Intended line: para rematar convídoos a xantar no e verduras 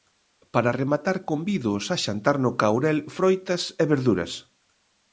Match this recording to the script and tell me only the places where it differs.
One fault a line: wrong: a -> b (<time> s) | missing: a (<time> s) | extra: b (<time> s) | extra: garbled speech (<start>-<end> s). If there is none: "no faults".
extra: caurel froitas (2.6 s)